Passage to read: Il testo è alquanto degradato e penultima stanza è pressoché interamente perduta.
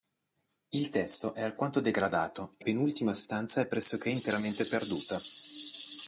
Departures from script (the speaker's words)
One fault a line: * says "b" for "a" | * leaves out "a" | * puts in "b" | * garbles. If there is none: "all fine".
all fine